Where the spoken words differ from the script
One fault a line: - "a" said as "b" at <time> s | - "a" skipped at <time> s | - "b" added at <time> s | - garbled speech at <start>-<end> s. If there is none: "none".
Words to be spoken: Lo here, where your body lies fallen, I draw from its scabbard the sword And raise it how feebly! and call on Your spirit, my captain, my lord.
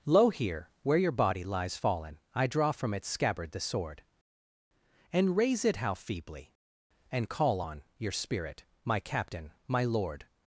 none